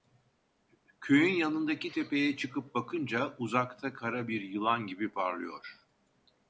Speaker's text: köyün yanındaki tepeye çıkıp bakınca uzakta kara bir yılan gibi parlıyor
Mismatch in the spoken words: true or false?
false